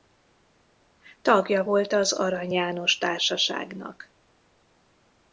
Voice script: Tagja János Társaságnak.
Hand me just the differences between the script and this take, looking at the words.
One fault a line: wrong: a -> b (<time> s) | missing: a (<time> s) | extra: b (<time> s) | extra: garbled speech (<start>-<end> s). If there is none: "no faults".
extra: volt az Arany (1.6 s)